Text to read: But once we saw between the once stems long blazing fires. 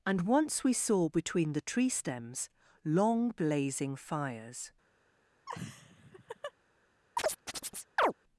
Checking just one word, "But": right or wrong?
wrong